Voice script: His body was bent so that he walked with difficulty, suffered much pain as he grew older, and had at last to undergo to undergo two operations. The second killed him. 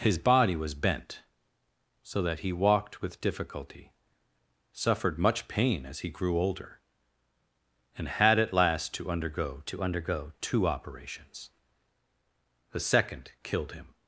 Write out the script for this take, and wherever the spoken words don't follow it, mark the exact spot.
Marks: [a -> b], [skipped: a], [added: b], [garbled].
His body was bent so that he walked with difficulty, suffered much pain as he grew older, and had at last to undergo to undergo two operations. The second killed him.